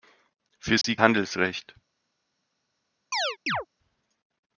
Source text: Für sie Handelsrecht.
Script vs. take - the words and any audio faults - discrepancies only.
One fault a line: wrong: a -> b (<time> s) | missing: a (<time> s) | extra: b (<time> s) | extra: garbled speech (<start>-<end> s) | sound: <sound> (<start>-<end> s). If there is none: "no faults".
sound: dropout (0.8-0.8 s)
sound: chirp (3.1-3.7 s)